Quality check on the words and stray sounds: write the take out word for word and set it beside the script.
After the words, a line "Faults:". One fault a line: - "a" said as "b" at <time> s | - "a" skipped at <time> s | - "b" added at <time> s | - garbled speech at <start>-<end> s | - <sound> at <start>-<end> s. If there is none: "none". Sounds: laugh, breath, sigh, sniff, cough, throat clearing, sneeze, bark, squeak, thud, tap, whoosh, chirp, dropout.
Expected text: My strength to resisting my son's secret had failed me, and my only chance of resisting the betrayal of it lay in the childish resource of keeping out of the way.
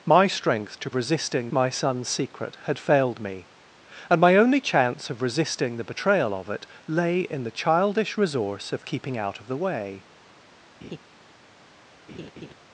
My strength to resisting my son's secret had failed me, and my only chance of resisting the betrayal of it lay in the childish resource of keeping out of the way.
Faults:
- laugh at 10.8-11.0 s
- laugh at 12.1-12.5 s